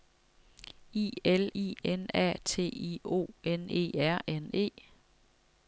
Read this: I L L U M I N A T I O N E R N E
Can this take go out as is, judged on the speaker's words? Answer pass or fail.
fail